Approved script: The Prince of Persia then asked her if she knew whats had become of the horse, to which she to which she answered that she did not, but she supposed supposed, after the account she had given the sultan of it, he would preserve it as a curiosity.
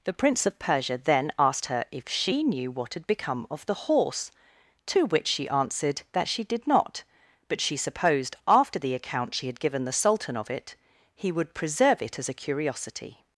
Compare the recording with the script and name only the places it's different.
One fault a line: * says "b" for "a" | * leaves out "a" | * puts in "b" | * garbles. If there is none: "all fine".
* says "what" for "whats"
* leaves out "to which she"
* leaves out "supposed"